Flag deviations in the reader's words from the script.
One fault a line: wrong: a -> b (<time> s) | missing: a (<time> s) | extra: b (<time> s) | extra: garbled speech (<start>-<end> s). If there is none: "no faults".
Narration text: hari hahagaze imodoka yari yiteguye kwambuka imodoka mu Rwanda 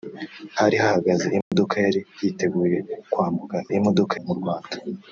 no faults